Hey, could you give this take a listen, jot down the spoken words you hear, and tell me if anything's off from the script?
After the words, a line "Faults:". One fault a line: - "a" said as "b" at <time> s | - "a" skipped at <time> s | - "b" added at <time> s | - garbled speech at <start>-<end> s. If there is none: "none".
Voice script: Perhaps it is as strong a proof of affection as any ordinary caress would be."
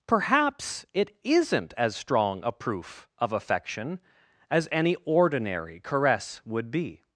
Perhaps it isn't as strong a proof of affection as any ordinary caress would be."
Faults:
- "is" said as "isn't" at 1.2 s